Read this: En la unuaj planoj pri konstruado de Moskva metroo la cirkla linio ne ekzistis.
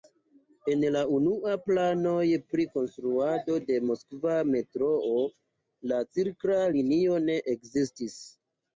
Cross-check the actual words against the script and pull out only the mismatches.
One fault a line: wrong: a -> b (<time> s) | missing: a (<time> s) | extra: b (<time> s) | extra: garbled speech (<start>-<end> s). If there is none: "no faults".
no faults